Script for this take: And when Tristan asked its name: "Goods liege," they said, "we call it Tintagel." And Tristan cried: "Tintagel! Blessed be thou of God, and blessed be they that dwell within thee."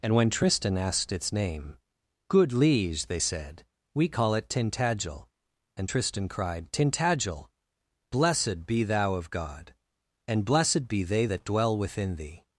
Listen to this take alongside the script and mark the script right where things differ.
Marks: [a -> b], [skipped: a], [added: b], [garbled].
And when Tristan asked its name: ["Goods -> Good] liege," they said, "we call it Tintagel." And Tristan cried: "Tintagel! Blessed be thou of God, and blessed be they that dwell within thee."